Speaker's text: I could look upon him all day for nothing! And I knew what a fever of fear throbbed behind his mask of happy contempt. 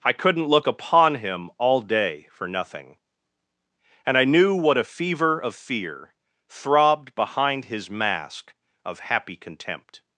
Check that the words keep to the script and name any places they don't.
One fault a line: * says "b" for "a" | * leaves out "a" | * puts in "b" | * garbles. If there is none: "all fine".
* says "couldn't" for "could"